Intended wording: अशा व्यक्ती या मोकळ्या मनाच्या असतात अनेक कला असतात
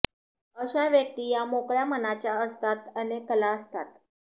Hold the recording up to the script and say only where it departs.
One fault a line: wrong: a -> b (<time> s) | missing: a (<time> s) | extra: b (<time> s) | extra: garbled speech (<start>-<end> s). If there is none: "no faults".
no faults